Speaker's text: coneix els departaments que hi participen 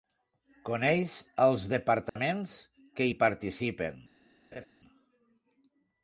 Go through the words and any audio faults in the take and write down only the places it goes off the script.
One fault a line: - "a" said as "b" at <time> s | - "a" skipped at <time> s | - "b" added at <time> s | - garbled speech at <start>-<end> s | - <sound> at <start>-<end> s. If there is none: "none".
- dropout at 2.1-2.2 s
- laugh at 4.5-4.7 s